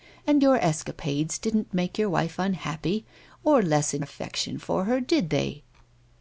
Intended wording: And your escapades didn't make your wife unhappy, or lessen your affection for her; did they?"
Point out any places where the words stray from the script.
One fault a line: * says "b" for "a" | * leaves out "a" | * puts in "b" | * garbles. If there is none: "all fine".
* leaves out "your"